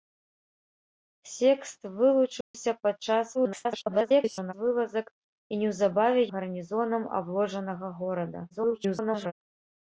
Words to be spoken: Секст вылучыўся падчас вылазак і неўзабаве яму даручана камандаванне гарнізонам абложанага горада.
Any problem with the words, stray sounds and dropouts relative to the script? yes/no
yes